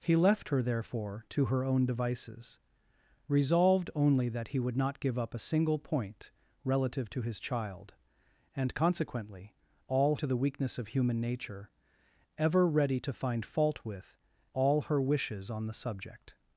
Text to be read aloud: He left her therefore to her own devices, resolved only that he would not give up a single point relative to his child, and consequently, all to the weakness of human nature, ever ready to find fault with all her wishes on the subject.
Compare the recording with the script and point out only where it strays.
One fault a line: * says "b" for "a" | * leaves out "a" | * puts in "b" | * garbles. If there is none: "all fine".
all fine